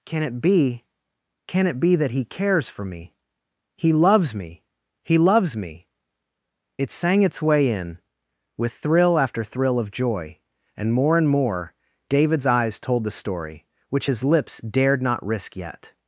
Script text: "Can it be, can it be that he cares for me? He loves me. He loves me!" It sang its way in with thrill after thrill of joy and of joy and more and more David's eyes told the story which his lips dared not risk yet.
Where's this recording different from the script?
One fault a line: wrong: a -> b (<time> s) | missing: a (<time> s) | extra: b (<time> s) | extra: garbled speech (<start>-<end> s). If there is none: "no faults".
missing: of joy and (10.9 s)